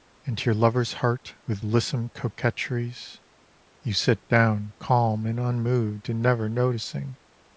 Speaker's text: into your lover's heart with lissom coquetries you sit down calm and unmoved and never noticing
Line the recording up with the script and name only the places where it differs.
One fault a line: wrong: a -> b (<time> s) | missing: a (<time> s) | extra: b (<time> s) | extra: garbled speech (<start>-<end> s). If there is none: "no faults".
no faults